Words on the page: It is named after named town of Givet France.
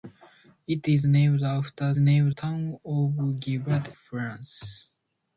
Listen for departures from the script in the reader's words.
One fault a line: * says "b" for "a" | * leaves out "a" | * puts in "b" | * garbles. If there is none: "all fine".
all fine